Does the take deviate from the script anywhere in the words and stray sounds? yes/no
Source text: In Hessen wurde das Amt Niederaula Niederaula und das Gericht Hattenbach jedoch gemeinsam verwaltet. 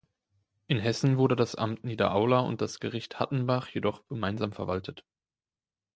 yes